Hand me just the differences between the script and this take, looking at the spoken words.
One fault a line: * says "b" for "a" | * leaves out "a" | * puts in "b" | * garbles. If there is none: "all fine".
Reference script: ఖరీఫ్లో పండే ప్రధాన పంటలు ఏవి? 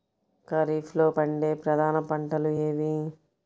all fine